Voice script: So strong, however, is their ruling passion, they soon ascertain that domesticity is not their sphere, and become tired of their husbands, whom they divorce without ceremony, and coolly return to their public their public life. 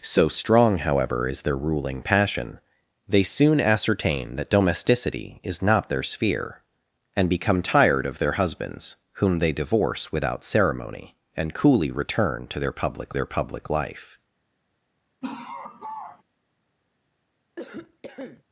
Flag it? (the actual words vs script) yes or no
no